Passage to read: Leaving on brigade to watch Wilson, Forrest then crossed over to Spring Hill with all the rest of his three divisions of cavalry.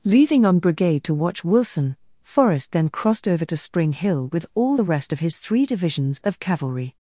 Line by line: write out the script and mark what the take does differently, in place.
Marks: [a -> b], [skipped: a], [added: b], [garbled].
Leaving on brigade to watch Wilson, Forrest then crossed over to Spring Hill with all the rest of his three divisions of cavalry.